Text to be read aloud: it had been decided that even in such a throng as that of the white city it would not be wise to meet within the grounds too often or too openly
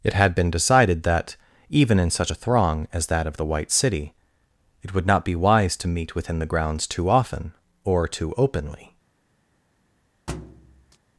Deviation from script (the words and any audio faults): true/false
true